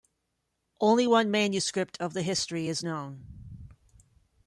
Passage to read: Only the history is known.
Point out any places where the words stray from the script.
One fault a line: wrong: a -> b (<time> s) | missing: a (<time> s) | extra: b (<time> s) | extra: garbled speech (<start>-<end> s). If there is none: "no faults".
extra: one manuscript of (1.0 s)